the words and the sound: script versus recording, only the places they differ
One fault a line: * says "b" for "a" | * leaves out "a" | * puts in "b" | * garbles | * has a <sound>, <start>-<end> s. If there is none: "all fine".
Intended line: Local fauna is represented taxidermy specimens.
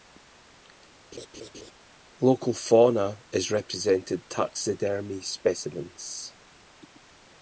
* has a laugh, 1.1-1.7 s